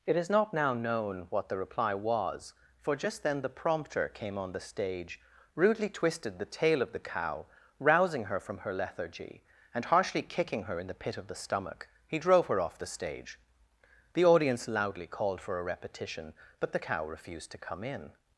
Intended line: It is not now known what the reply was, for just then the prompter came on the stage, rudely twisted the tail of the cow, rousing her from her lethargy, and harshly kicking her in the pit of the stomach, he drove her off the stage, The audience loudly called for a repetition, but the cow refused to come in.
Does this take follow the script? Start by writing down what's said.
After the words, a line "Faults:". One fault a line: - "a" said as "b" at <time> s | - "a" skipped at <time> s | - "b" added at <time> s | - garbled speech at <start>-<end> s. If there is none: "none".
It is not now known what the reply was, for just then the prompter came on the stage, rudely twisted the tail of the cow, rousing her from her lethargy, and harshly kicking her in the pit of the stomach, he drove her off the stage, The audience loudly called for a repetition, but the cow refused to come in.
Faults:
none